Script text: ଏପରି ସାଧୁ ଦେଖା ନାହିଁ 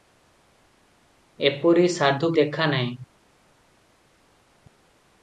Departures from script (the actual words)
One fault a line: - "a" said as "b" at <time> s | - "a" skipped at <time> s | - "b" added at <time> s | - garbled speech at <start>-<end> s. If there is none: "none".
none